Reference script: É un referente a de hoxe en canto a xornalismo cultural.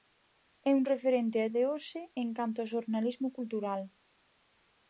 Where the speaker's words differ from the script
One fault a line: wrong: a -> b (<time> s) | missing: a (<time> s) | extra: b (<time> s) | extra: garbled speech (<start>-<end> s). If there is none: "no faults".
no faults